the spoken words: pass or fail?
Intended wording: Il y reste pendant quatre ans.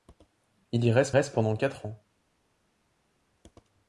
fail